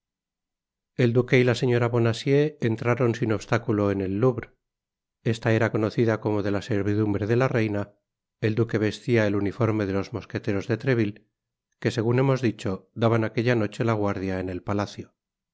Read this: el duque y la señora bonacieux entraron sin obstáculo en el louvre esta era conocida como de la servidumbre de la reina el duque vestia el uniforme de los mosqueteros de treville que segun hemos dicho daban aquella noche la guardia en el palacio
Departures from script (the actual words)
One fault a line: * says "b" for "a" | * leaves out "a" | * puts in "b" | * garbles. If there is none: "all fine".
all fine